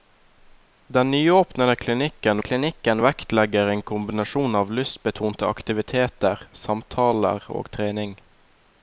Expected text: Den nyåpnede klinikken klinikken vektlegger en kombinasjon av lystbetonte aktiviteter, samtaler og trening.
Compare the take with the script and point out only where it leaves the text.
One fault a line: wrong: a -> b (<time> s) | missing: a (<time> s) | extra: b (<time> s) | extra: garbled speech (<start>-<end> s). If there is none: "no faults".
no faults